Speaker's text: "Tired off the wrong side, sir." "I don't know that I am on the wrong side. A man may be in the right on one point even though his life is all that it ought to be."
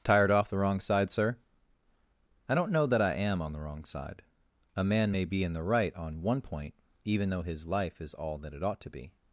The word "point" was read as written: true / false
true